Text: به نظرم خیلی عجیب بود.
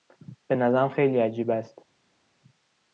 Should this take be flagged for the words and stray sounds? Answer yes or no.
yes